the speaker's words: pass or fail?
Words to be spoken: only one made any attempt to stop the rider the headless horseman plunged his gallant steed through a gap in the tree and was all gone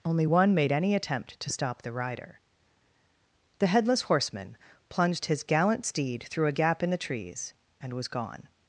fail